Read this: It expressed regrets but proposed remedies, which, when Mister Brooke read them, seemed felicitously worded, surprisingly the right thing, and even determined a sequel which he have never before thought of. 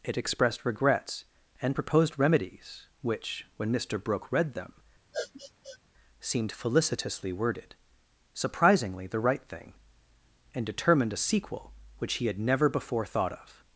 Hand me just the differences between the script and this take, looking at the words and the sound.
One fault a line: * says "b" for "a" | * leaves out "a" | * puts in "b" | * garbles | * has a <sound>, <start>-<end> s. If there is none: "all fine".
* says "and" for "but"
* has a sniff, 5.1-5.8 s
* leaves out "even"
* says "had" for "have"